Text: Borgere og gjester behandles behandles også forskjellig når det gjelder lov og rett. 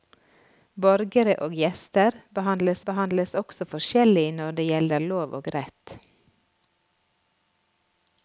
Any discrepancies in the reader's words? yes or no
no